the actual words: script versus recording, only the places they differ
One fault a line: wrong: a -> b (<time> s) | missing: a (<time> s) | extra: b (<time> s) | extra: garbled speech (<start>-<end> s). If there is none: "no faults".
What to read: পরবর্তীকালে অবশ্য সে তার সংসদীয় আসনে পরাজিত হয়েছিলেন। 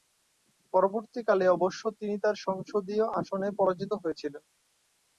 wrong: সে -> তিনি (2.0 s)